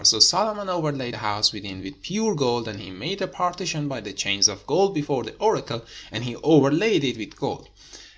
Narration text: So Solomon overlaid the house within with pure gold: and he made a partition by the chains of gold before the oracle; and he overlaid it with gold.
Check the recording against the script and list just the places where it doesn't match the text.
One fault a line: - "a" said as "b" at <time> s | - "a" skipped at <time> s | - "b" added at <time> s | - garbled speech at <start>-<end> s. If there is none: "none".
none